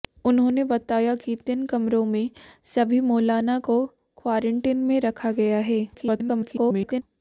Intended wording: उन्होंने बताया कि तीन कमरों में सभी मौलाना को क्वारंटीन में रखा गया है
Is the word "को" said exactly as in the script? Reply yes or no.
yes